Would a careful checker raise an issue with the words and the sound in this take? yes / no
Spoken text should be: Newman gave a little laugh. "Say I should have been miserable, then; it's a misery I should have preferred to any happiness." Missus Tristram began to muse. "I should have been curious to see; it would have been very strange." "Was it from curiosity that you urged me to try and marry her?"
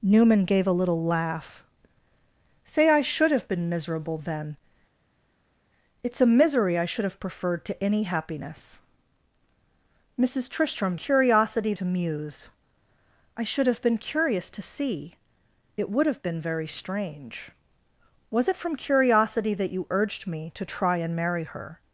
yes